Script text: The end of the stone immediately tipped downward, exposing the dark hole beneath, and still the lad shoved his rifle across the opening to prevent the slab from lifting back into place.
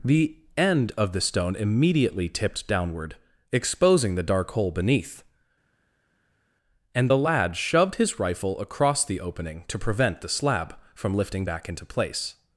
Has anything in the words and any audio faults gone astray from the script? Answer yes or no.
yes